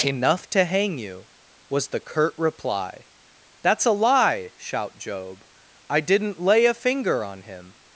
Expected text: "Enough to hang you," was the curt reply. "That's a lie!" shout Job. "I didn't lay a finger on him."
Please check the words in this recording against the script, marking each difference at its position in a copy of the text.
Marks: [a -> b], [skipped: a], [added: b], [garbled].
"Enough to hang you," was the curt reply. "That's a lie!" shout Job. "I didn't lay a finger on him."